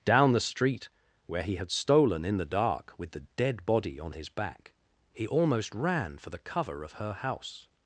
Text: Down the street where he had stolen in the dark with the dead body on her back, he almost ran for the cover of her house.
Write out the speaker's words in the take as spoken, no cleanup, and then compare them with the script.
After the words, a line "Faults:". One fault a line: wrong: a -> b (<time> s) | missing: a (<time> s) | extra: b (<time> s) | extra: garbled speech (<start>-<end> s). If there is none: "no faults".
Down the street where he had stolen in the dark with the dead body on his back, he almost ran for the cover of her house.
Faults:
wrong: her -> his (4.1 s)